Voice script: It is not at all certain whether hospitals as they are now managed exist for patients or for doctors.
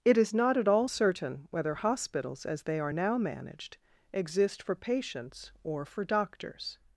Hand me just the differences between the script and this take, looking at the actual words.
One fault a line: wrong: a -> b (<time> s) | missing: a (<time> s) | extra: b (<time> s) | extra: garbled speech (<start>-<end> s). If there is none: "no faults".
no faults